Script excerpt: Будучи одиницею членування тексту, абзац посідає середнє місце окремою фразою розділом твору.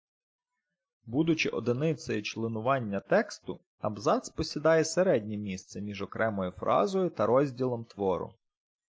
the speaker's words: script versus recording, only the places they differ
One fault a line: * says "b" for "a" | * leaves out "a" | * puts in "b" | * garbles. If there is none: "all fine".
* puts in "між"
* puts in "та"